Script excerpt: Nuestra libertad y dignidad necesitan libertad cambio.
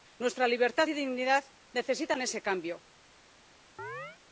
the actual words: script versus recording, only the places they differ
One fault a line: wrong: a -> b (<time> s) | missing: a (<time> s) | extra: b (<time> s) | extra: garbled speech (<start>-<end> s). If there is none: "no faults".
wrong: libertad -> ese (2.2 s)